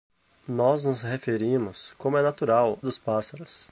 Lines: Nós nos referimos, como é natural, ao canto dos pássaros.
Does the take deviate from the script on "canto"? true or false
true